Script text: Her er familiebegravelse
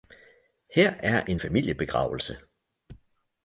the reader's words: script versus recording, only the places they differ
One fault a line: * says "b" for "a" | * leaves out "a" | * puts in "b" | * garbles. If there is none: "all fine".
* puts in "en"